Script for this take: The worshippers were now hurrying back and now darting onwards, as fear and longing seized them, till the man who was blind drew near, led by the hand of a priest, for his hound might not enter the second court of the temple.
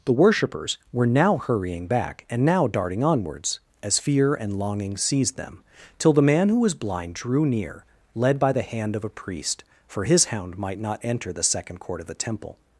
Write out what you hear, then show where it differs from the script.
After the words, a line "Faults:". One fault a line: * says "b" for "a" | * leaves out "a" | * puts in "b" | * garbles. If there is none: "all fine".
The worshippers were now hurrying back and now darting onwards, as fear and longing seized them, till the man who was blind drew near, led by the hand of a priest, for his hound might not enter the second court of the temple.
Faults:
all fine